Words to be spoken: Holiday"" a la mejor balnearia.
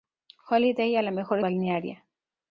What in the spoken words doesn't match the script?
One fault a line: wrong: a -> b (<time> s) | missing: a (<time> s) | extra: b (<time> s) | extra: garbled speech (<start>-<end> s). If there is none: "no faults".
no faults